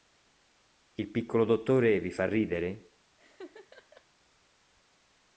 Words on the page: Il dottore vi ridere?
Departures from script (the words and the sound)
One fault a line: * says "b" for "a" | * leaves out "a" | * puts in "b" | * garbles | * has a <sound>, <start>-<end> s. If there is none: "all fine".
* puts in "piccolo"
* puts in "fa"
* has a laugh, 3.2-4.1 s